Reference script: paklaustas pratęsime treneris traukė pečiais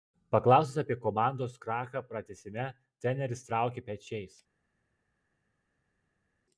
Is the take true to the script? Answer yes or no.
no